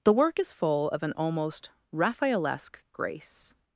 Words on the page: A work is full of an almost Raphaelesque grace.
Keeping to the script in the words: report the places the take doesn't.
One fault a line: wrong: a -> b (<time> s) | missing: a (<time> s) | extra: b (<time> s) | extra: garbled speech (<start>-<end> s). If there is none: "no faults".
wrong: A -> The (0.0 s)